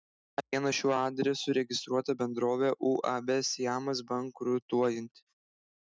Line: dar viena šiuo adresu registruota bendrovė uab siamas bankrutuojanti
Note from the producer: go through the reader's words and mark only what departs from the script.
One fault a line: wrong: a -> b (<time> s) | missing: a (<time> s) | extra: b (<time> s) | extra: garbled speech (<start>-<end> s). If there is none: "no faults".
no faults